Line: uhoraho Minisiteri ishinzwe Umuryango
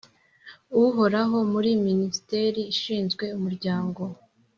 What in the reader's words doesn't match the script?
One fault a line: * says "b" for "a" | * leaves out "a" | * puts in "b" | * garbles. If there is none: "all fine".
* puts in "muri"